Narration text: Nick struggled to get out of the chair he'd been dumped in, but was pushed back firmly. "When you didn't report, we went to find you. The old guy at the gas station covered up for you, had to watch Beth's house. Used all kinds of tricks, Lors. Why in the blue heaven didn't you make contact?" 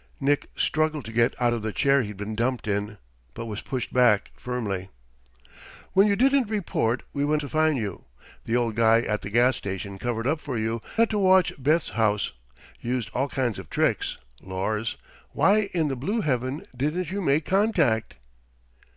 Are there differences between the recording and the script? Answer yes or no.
no